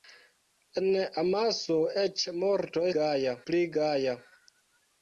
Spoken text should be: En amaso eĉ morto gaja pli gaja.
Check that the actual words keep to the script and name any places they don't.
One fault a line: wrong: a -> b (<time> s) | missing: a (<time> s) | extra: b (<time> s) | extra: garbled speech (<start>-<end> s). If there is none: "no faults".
no faults